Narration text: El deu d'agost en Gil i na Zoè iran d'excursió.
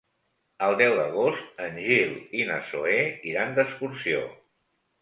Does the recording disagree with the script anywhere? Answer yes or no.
no